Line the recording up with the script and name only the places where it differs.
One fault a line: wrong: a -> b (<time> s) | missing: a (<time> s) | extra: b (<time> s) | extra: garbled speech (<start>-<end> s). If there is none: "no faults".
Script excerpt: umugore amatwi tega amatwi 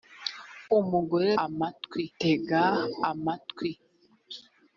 no faults